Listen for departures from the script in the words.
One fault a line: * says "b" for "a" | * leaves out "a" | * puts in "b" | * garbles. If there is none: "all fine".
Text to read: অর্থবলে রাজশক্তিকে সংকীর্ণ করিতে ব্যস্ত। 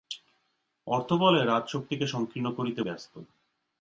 all fine